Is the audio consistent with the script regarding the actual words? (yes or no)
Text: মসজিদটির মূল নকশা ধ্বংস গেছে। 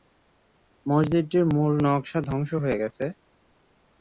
no